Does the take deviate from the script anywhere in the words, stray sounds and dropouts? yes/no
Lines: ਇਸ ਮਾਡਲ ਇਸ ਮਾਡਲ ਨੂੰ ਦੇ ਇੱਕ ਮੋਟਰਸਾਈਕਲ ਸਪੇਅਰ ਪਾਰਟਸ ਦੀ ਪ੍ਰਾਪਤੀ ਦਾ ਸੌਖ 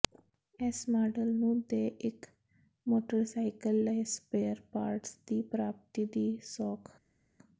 yes